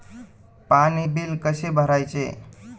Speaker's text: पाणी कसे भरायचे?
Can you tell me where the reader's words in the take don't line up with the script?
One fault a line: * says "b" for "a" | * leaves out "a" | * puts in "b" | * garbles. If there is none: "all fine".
* puts in "बिल"